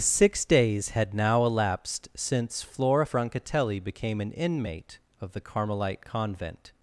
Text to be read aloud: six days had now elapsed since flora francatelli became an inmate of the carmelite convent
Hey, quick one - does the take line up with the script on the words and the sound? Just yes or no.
yes